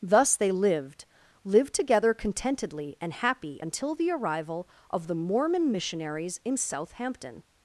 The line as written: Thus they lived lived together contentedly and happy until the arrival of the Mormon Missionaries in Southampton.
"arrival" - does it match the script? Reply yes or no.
yes